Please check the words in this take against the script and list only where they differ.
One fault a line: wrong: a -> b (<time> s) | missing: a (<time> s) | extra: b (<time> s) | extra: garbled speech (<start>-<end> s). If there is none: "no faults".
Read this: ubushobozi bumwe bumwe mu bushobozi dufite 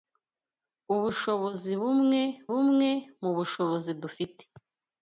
no faults